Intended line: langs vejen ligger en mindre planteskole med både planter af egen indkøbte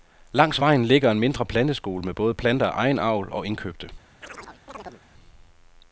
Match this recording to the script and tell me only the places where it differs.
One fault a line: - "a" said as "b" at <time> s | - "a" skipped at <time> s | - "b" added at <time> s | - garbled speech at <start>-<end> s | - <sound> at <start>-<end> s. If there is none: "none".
- "avl og" added at 3.0 s
- chirp at 4.2-5.0 s